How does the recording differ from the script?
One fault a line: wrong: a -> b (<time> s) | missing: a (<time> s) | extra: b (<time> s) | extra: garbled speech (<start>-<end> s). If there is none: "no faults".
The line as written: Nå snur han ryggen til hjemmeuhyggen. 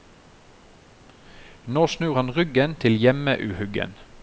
no faults